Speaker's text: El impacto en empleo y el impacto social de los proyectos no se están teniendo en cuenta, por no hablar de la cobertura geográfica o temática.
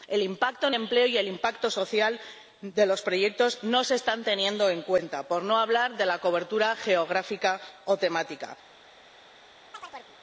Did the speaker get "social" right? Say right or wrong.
right